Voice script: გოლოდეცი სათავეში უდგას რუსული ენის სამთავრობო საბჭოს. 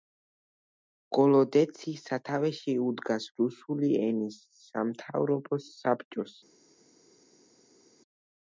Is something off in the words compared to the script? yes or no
no